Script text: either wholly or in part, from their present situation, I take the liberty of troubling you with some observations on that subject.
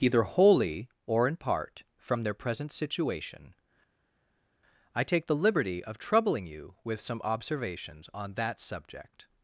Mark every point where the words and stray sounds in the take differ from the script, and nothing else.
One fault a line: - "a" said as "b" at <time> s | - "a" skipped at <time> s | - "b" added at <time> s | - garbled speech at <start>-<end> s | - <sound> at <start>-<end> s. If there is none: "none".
none